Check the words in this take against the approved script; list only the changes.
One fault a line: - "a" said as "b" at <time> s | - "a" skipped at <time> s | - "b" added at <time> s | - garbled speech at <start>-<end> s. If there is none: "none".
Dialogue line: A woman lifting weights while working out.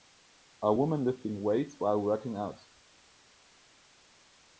none